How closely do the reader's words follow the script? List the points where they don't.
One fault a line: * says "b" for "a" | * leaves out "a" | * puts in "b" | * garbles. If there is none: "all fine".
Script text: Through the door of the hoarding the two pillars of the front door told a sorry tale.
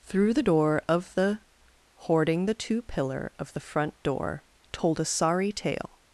* says "pillar" for "pillars"